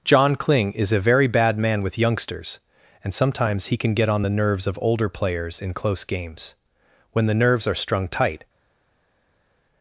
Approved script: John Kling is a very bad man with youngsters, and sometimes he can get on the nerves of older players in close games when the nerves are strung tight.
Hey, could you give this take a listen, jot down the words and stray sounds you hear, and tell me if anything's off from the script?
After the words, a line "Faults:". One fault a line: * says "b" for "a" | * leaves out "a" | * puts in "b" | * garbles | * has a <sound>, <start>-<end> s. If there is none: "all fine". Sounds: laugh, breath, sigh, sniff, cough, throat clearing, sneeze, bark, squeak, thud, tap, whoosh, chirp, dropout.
John Kling is a very bad man with youngsters, and sometimes he can get on the nerves of older players in close games when the nerves are strung tight.
Faults:
all fine